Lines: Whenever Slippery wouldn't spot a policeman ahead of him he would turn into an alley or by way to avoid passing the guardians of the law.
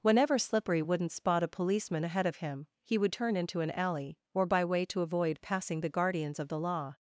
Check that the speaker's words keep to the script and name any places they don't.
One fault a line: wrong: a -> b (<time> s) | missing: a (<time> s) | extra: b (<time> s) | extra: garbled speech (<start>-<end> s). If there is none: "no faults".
no faults